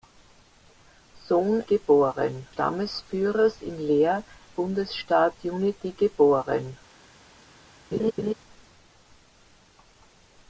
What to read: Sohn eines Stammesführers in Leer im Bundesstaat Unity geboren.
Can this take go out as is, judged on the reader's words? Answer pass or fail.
fail